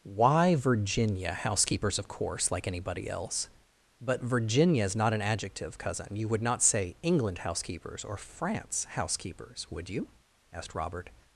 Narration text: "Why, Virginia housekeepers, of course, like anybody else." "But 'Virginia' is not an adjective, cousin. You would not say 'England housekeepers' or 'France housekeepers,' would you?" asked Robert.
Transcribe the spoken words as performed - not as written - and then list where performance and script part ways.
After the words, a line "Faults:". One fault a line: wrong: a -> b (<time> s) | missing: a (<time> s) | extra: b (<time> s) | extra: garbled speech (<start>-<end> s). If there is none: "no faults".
"Why, Virginia housekeepers, of course, like anybody else." "But 'Virginia' is not an adjective, cousin. You would not say 'England housekeepers' or 'France housekeepers,' would you?" asked Robert.
Faults:
no faults